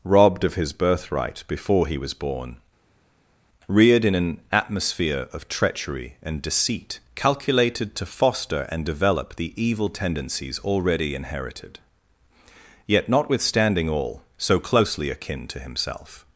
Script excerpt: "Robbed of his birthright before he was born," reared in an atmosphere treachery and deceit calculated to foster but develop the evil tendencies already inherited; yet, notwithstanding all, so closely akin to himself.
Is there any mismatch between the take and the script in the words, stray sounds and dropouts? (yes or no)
yes